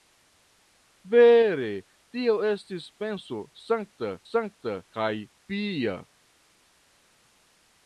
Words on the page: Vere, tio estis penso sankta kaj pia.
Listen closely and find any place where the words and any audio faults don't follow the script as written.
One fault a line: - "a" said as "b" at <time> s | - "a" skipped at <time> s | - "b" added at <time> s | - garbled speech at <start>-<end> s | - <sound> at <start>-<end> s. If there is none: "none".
- "sankta" added at 4.3 s